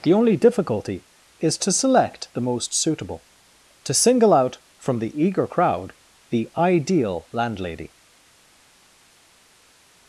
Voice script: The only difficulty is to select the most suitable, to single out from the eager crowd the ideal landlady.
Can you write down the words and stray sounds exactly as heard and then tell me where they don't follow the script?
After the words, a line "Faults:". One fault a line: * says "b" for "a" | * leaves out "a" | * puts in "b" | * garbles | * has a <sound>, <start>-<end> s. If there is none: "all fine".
The only difficulty is to select the most suitable, to single out from the eager crowd the ideal landlady.
Faults:
all fine